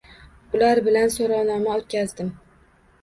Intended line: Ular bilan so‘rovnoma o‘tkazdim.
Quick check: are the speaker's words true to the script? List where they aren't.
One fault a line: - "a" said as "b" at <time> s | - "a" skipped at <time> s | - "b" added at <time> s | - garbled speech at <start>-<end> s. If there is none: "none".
none